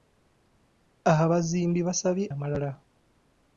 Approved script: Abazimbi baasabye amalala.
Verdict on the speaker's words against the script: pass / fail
pass